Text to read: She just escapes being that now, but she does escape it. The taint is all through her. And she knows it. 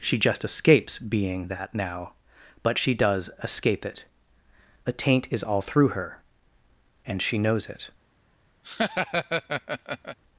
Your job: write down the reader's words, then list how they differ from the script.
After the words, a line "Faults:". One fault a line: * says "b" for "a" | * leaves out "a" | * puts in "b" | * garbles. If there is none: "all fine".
She just escapes being that now, but she does escape it. A taint is all through her. And she knows it.
Faults:
* says "A" for "The"